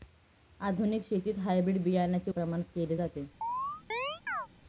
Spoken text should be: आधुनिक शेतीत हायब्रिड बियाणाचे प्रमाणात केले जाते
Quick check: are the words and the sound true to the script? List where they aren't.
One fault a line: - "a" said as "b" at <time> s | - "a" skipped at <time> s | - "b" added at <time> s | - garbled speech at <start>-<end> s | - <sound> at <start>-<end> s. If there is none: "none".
- chirp at 3.4-4.5 s